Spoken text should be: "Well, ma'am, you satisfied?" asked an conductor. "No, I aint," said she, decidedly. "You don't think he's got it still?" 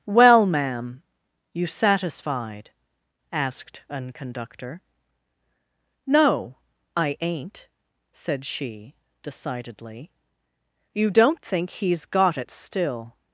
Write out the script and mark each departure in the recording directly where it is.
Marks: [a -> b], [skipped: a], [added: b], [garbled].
"Well, ma'am, you satisfied?" asked an conductor. "No, I aint," said she, decidedly. "You don't think he's got it still?"